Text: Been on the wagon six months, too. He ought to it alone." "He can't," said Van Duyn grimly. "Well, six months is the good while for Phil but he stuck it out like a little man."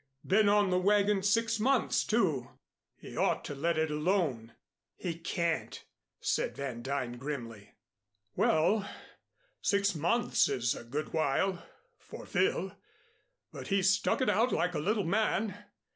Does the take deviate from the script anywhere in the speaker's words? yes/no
yes